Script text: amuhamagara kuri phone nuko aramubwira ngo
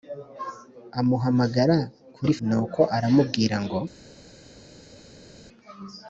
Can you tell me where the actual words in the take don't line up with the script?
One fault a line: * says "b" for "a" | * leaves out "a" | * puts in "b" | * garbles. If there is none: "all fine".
* leaves out "phone"